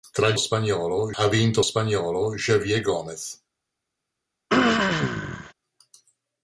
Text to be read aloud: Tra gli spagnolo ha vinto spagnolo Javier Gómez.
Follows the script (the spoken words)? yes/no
yes